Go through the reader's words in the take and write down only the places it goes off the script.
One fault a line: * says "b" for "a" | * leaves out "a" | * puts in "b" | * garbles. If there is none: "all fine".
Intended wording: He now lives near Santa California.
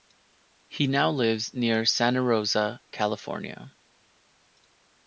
* puts in "Rosa"